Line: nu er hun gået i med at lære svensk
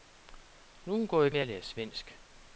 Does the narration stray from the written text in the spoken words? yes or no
no